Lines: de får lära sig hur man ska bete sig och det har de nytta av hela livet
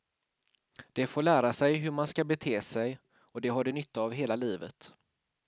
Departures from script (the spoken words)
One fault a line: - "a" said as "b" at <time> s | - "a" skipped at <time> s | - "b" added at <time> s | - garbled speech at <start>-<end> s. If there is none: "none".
none